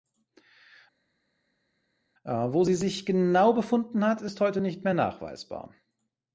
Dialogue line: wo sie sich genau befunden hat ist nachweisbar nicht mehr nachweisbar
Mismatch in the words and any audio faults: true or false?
true